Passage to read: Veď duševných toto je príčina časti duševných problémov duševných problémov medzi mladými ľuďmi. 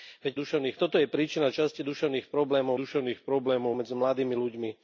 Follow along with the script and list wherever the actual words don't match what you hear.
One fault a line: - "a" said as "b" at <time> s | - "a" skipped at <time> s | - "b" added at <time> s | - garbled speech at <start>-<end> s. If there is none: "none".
none